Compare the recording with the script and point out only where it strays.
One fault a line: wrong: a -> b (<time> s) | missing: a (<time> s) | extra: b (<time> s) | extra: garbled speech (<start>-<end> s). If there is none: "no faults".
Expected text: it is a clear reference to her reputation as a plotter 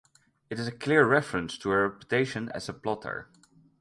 no faults